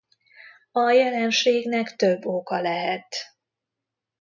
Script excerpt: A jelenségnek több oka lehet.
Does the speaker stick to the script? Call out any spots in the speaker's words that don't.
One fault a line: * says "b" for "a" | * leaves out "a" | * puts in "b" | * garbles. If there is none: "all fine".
all fine